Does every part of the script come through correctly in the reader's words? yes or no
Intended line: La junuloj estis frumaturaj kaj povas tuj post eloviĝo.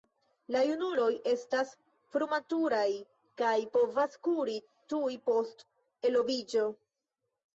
no